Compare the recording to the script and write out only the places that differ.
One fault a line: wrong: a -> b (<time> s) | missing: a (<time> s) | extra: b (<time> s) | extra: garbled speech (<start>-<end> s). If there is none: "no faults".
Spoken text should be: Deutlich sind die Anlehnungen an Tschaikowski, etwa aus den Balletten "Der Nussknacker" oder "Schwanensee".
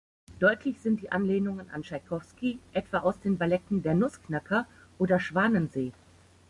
no faults